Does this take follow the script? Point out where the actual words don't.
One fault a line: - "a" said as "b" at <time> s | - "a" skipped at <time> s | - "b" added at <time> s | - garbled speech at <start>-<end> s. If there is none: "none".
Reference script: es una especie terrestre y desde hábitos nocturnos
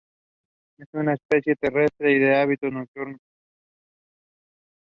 - "desde" said as "de" at 2.2 s